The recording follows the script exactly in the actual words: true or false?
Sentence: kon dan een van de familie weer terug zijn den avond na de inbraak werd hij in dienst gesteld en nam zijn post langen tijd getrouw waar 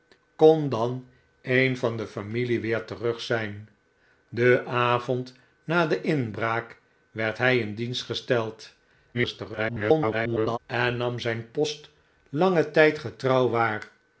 false